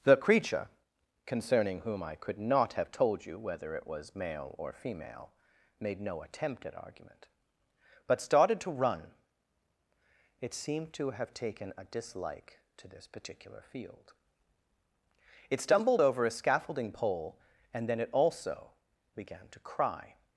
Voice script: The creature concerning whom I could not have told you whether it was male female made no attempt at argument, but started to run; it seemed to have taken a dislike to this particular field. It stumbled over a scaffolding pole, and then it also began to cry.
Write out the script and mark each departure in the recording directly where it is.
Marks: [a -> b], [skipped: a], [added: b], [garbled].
The creature concerning whom I could not have told you whether it was male [added: or] female made no attempt at argument, but started to run; it seemed to have taken a dislike to this particular field. It stumbled over a scaffolding pole, and then it also began to cry.